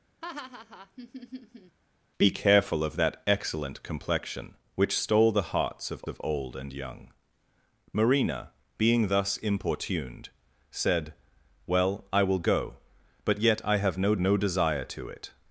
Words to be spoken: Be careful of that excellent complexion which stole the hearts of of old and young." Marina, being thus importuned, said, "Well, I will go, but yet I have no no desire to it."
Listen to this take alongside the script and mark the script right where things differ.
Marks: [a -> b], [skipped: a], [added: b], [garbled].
Be careful of that excellent complexion which stole the hearts of of old and young." Marina, being thus importuned, said, "Well, I will go, but yet I have no no desire to it."